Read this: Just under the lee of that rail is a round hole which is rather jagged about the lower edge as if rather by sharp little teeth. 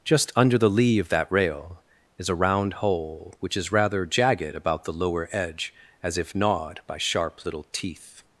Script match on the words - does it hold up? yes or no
no